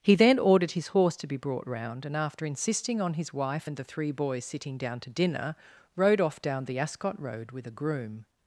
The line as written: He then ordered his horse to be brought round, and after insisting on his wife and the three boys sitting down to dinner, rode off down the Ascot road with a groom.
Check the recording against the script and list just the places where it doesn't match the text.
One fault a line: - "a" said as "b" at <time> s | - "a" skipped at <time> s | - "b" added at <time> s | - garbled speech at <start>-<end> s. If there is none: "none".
none